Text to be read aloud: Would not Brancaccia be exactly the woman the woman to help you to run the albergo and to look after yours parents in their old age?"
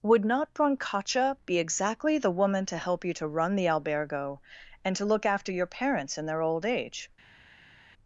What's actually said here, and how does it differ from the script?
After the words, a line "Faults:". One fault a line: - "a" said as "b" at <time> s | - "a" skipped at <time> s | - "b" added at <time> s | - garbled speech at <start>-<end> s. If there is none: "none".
Would not Brancaccia be exactly the woman to help you to run the albergo and to look after your parents in their old age?"
Faults:
- "the woman" skipped at 2.6 s
- "yours" said as "your" at 5.5 s